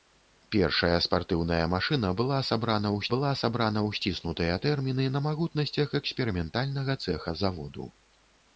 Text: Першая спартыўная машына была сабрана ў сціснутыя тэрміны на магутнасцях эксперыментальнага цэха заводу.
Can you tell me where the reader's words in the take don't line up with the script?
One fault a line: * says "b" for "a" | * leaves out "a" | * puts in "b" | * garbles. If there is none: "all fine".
* puts in "была сабрана ў"